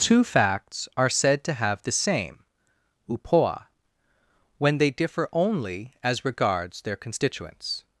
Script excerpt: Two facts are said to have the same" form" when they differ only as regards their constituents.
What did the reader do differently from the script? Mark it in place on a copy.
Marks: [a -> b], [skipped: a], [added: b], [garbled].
Two facts are said to have the same" [form" -> upoa] when they differ only as regards their constituents.